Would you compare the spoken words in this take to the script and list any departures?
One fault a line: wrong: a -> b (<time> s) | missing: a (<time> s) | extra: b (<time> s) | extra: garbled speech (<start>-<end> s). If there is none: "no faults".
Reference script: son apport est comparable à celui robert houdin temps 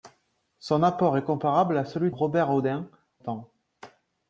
no faults